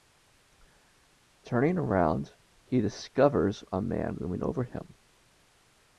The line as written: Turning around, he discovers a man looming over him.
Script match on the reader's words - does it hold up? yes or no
yes